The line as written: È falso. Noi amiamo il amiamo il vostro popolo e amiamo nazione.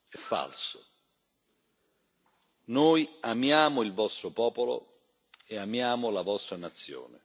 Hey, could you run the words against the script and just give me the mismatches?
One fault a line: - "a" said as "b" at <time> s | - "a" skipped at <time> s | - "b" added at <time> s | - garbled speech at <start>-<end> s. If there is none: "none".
- "amiamo il" skipped at 3.9 s
- "la vostra" added at 6.1 s